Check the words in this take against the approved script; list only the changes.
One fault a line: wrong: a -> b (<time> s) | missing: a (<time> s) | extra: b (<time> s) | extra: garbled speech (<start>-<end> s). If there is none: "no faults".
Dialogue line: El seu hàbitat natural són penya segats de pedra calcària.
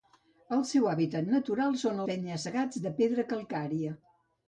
no faults